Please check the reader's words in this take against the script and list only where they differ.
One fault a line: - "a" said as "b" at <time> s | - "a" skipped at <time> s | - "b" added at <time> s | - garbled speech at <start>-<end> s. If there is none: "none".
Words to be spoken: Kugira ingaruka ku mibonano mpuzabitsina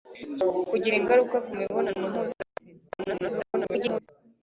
- garbled speech at 2.9-4.1 s